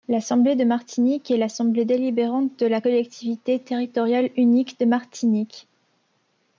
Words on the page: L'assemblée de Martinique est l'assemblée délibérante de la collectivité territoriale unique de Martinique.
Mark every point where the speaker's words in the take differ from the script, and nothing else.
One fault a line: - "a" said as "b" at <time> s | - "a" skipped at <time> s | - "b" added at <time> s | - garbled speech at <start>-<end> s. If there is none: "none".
none